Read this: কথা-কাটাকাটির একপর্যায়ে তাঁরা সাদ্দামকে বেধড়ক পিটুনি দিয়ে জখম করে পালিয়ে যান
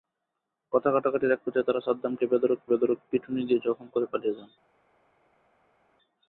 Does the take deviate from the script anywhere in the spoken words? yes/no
yes